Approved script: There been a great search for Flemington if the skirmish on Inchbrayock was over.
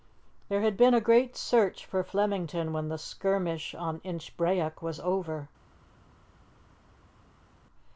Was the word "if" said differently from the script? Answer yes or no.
yes